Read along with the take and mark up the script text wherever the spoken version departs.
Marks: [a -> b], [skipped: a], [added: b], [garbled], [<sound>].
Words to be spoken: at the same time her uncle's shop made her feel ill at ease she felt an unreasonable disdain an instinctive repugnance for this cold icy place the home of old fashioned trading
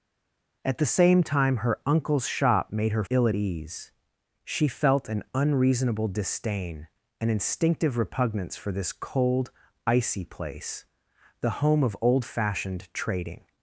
at the same time her uncle's shop made her [skipped: feel] ill at ease she felt an unreasonable disdain an instinctive repugnance for this cold icy place the home of old fashioned trading